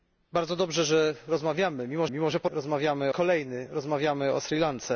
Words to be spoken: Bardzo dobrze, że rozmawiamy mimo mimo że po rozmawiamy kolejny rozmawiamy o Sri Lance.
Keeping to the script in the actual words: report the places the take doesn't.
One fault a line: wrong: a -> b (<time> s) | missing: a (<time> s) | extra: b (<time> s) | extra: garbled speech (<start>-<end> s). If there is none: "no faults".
no faults